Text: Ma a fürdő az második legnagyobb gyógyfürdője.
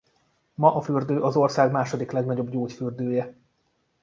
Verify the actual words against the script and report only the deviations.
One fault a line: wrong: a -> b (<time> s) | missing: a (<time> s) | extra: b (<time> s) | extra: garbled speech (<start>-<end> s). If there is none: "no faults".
extra: ország (1.4 s)